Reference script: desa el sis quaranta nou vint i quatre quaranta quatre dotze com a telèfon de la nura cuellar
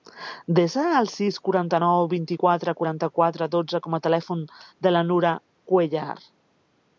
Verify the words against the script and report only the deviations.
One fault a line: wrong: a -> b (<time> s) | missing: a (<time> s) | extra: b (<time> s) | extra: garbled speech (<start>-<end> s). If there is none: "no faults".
no faults